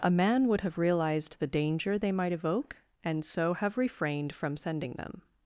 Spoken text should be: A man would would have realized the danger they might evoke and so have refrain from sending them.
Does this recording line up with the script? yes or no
no